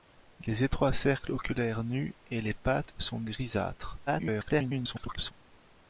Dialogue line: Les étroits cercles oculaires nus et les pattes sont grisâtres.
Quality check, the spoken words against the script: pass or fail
fail